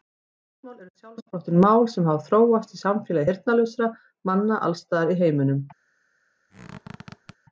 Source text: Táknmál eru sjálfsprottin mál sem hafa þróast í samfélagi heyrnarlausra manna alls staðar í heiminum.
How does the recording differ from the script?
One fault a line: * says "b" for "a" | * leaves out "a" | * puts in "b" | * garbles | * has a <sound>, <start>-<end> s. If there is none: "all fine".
* has a squeak, 6.5-7.4 s